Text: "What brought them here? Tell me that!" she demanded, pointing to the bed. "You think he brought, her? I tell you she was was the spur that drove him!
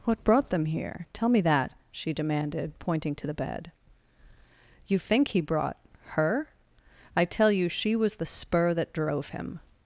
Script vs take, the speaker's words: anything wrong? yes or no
yes